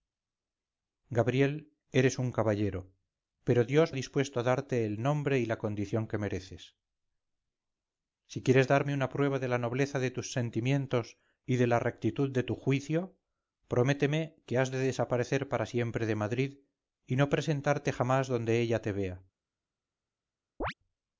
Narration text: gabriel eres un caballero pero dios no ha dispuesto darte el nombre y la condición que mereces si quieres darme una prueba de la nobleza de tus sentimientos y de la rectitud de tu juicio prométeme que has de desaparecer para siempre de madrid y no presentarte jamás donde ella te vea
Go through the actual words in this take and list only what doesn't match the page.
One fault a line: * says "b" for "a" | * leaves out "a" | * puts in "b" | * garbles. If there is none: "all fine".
* leaves out "no"